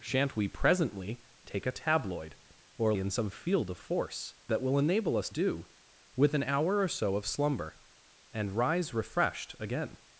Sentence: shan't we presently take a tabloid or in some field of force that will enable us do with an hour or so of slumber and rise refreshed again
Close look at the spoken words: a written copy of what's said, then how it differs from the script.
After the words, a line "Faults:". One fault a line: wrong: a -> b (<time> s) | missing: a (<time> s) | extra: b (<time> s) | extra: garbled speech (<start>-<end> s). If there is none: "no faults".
shan't we presently take a tabloid or in some field of force that will enable us do with an hour or so of slumber and rise refreshed again
Faults:
no faults